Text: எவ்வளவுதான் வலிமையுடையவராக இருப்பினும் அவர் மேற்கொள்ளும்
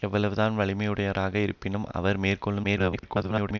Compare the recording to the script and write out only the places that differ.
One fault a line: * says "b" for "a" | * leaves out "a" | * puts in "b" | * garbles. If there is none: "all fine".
* garbles